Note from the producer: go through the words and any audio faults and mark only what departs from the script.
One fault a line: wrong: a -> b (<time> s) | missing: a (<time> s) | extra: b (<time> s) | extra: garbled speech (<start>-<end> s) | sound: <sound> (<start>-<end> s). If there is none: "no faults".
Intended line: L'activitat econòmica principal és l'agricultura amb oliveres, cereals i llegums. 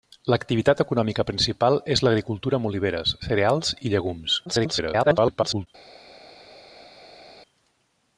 extra: garbled speech (4.5-5.7 s)